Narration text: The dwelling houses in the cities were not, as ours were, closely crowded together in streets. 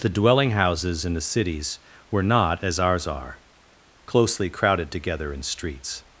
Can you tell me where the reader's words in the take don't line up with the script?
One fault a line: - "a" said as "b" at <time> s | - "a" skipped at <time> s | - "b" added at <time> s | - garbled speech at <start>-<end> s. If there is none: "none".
- "were" said as "are" at 3.0 s